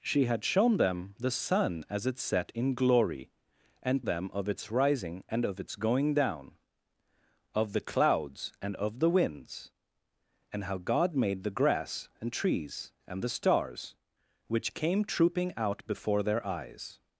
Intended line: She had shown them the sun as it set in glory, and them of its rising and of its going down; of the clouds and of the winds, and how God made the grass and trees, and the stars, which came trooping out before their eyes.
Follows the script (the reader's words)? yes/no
yes